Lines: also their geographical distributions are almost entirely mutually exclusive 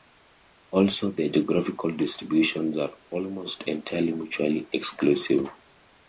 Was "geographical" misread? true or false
false